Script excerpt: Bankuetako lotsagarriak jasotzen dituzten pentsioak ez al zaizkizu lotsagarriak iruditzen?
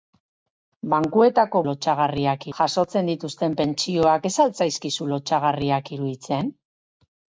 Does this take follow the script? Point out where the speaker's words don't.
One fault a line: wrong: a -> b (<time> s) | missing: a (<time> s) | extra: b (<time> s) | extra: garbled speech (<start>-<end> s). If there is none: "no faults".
no faults